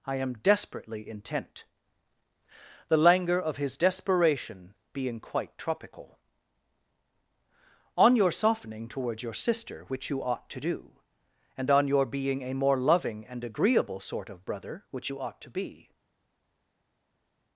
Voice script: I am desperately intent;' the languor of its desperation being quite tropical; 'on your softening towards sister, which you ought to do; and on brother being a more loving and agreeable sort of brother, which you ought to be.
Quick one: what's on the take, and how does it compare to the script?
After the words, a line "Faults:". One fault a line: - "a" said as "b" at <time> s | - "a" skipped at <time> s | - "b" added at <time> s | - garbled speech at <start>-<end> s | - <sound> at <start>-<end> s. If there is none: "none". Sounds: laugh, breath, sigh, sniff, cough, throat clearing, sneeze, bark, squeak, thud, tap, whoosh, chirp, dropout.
I am desperately intent;' the languor of his desperation being quite tropical; 'on your softening towards your sister, which you ought to do; and on your being a more loving and agreeable sort of brother, which you ought to be.
Faults:
- "its" said as "his" at 3.6 s
- "your" added at 9.2 s
- "brother" said as "your" at 11.9 s